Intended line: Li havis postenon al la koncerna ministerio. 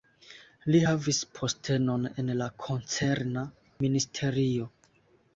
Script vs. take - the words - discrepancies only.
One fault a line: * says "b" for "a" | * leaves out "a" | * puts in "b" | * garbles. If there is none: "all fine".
* says "en" for "al"